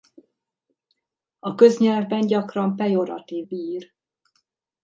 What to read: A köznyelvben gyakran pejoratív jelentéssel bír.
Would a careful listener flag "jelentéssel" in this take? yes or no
yes